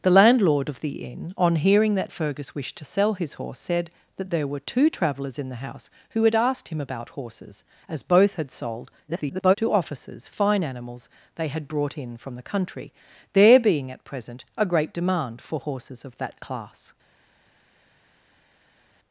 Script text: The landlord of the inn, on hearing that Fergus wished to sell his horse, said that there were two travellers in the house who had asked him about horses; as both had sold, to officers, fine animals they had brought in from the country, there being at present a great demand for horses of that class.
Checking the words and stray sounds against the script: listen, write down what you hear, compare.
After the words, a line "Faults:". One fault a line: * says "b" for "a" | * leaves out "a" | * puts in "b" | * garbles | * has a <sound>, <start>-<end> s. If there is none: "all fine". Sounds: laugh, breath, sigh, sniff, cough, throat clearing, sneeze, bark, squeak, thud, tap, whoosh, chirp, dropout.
The landlord of the inn, on hearing that Fergus wished to sell his horse, said that there were two travellers in the house who had asked him about horses; as both had sold, [garbled] to officers, fine animals they had brought in from the country, there being at present a great demand for horses of that class.
Faults:
* garbles